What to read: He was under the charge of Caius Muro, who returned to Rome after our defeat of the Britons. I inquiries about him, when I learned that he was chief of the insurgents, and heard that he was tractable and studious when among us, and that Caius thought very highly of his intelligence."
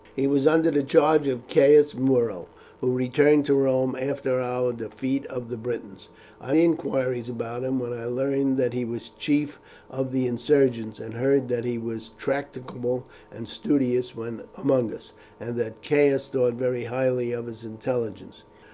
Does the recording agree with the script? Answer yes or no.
yes